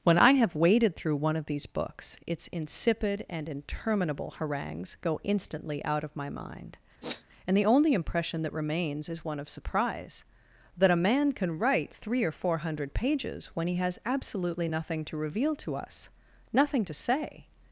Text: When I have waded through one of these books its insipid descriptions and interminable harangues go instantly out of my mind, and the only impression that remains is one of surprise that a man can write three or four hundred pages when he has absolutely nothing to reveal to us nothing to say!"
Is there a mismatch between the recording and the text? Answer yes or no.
yes